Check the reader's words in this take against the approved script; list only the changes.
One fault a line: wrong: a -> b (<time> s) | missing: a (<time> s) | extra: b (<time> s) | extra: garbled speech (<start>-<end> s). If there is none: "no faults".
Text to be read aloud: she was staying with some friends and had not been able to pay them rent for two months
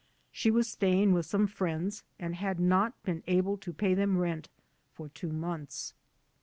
no faults